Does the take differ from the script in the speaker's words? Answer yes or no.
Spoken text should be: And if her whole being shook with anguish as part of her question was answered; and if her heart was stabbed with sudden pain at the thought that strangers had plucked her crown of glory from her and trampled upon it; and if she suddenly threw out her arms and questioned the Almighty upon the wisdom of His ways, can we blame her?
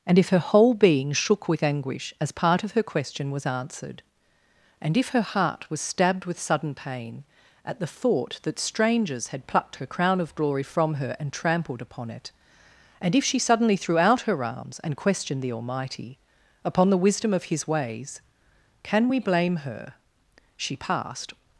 yes